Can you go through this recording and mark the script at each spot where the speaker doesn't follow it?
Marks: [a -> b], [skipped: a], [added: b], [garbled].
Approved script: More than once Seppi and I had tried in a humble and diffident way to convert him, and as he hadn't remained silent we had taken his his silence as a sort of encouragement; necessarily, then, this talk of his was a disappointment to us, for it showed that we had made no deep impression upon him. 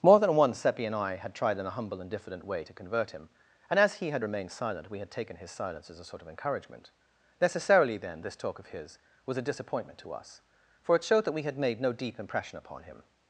More than once Seppi and I had tried in a humble and diffident way to convert him, and as he [hadn't -> had] remained silent we had taken his [skipped: his] silence as a sort of encouragement; necessarily, then, this talk of his was a disappointment to us, for it showed that we had made no deep impression upon him.